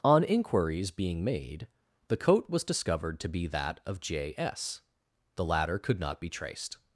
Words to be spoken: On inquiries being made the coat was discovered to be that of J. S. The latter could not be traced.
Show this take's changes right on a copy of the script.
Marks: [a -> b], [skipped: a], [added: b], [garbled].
On inquiries being made the coat was discovered to be that of J. S. The latter could not be traced.